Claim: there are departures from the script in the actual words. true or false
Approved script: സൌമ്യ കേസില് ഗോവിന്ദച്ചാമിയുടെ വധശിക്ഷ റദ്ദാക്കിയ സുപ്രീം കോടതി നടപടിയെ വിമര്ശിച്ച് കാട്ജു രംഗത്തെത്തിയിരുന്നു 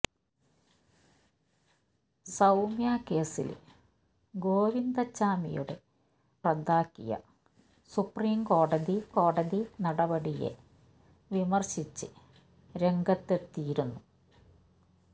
true